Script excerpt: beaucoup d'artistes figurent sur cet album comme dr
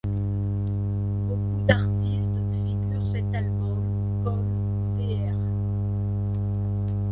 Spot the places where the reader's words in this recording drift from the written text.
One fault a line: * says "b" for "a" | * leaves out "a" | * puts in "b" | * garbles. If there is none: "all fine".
* leaves out "sur"